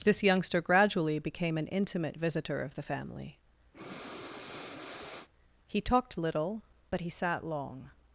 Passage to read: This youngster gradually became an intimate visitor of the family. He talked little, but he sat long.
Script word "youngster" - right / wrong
right